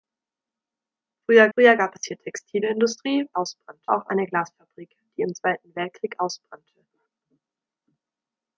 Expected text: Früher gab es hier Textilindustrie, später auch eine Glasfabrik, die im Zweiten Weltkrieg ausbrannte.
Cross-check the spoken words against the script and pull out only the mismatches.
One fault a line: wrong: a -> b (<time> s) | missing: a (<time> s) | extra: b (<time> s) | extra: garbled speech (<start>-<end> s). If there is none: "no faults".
extra: früher (1.5 s)
wrong: später -> ausbrannte (3.3 s)